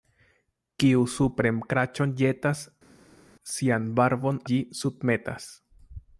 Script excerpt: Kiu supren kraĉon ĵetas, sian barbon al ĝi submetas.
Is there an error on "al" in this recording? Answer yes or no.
yes